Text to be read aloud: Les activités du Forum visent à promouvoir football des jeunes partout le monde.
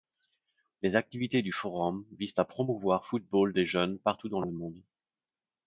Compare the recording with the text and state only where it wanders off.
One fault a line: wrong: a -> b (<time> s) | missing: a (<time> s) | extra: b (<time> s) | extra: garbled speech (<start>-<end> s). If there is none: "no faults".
extra: dans (4.3 s)